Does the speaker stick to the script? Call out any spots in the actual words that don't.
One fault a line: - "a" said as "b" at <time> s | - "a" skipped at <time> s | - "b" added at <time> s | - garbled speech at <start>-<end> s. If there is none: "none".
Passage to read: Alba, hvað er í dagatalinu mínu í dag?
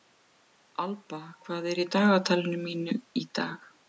none